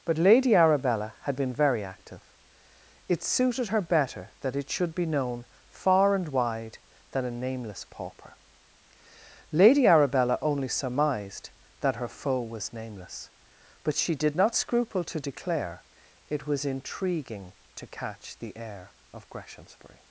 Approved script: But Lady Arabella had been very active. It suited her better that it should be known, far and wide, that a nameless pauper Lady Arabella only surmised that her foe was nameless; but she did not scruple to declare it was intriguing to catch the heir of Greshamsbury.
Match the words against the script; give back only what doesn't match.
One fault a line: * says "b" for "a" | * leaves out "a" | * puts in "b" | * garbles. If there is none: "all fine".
* says "than" for "that"